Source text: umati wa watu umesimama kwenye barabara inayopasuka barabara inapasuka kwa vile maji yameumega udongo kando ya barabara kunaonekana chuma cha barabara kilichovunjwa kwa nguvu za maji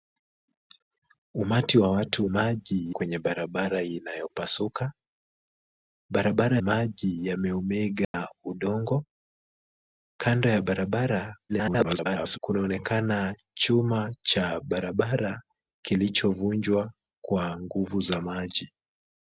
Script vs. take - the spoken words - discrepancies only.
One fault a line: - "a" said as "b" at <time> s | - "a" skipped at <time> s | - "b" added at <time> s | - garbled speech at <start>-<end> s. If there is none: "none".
- "umesimama" said as "maji" at 2.3 s
- "inapasuka kwa vile" skipped at 6.6 s
- garbled speech at 11.5-12.4 s